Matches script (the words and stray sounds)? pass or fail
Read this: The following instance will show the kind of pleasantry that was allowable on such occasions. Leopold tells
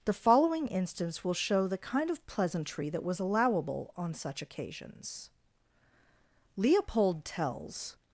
pass